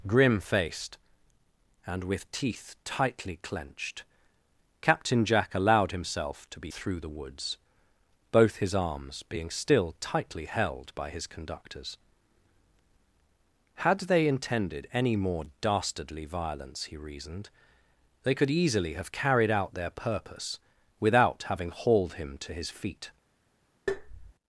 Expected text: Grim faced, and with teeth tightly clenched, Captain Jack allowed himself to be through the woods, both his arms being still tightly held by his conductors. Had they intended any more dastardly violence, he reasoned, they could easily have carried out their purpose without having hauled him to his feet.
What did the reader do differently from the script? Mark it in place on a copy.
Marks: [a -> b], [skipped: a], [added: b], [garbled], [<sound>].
Grim faced, and with teeth tightly clenched, Captain Jack allowed himself to be through the woods, both his arms being still tightly held by his conductors. Had they intended any more dastardly violence, he reasoned, they could easily have carried out their purpose without having hauled him to his feet. [tap]